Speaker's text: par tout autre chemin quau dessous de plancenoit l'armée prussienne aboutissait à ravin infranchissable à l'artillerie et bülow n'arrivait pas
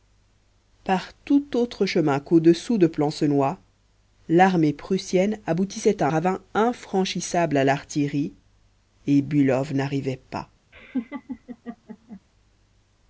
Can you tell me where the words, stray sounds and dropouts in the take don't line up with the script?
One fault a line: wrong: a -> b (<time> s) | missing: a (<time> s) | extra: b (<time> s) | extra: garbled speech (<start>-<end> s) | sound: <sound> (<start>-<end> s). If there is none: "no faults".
sound: laugh (10.7-12.2 s)